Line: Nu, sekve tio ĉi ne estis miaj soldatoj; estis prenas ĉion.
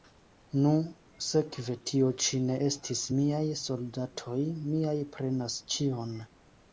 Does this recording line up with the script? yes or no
no